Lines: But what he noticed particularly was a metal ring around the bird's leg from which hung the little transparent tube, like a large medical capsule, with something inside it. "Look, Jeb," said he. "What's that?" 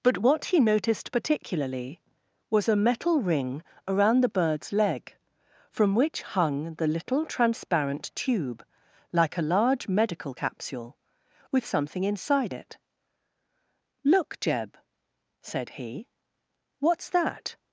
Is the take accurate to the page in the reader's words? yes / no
yes